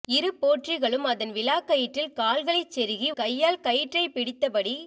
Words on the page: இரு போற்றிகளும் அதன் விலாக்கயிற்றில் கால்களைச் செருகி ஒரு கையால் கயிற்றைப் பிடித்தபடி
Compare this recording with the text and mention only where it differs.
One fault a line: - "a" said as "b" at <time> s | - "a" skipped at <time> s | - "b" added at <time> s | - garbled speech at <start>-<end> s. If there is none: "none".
- "ஒரு" skipped at 3.1 s